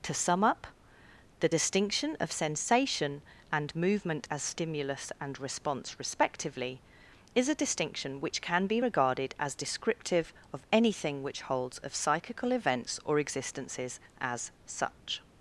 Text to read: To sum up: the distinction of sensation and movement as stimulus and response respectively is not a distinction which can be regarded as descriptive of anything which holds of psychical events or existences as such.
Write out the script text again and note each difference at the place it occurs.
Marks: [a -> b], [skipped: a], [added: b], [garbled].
To sum up: the distinction of sensation and movement as stimulus and response respectively is [skipped: not] a distinction which can be regarded as descriptive of anything which holds of psychical events or existences as such.